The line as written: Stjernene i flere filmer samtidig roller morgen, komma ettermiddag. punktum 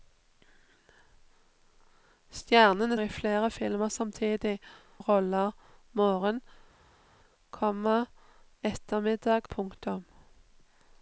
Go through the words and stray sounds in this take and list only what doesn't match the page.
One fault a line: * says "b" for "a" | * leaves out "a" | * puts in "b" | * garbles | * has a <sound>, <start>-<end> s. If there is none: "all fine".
all fine